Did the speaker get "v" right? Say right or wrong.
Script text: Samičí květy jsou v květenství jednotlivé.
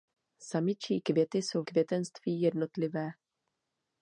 wrong